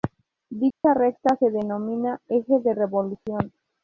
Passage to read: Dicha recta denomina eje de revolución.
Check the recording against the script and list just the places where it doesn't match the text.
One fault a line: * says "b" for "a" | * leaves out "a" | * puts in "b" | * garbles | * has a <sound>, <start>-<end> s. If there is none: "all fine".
* has a dropout, 0.7-0.8 s
* puts in "se"